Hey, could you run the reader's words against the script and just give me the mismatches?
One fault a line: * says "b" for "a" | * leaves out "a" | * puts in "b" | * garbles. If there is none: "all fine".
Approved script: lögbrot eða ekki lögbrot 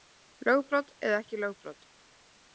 all fine